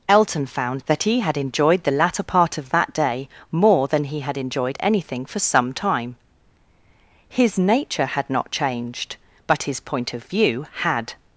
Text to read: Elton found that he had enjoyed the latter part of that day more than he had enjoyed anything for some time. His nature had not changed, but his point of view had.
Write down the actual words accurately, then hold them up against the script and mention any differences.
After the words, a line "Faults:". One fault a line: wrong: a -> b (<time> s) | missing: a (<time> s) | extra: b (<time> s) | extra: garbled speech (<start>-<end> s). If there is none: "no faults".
Elton found that he had enjoyed the latter part of that day more than he had enjoyed anything for some time. His nature had not changed, but his point of view had.
Faults:
no faults